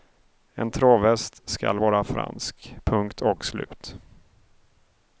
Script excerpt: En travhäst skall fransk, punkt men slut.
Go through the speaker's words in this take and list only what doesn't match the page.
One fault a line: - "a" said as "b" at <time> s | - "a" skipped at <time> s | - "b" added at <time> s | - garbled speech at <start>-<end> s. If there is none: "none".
- "vara" added at 1.8 s
- "men" said as "och" at 3.2 s